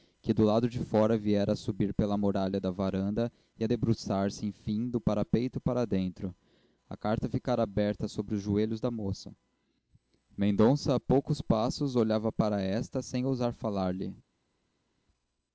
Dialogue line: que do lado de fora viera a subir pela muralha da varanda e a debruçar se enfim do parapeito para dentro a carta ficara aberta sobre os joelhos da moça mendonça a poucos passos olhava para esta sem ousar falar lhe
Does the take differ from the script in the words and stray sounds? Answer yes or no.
no